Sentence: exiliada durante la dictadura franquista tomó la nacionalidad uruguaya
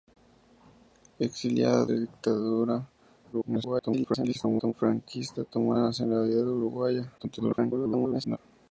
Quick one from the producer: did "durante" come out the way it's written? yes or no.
no